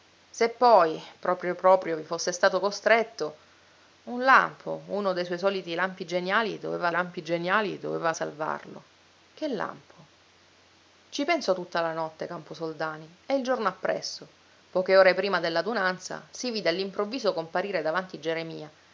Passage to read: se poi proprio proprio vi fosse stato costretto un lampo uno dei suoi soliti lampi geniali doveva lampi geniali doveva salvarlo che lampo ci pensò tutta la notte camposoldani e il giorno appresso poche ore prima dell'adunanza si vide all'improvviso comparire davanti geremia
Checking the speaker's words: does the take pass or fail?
pass